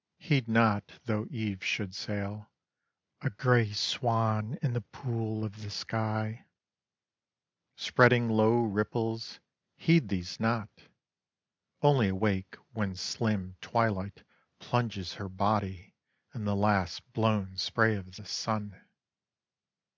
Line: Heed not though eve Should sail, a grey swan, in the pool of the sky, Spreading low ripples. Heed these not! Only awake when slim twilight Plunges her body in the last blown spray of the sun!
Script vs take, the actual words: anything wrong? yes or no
no